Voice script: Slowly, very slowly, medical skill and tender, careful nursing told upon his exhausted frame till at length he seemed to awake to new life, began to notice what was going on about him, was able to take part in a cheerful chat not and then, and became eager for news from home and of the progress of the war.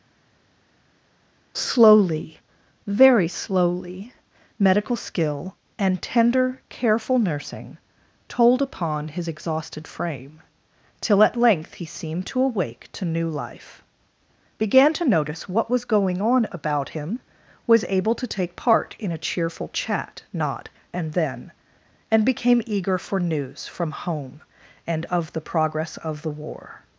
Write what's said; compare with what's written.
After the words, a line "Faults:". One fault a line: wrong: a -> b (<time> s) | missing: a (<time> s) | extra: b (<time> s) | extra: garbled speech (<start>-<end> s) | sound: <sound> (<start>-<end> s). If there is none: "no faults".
Slowly, very slowly, medical skill and tender, careful nursing told upon his exhausted frame till at length he seemed to awake to new life, began to notice what was going on about him, was able to take part in a cheerful chat not and then, and became eager for news from home and of the progress of the war.
Faults:
no faults